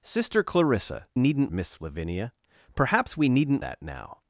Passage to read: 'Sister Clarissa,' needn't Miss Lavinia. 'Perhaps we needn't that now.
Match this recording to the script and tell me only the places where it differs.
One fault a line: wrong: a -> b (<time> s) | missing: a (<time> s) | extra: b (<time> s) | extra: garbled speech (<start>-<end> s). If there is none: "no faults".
no faults